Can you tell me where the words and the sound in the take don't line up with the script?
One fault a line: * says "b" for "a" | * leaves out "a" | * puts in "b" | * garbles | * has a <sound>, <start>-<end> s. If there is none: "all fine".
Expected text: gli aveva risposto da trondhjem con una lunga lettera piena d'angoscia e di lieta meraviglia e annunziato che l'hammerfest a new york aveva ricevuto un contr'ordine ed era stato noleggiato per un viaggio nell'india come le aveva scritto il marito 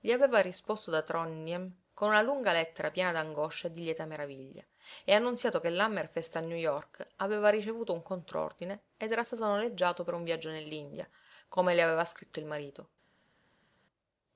all fine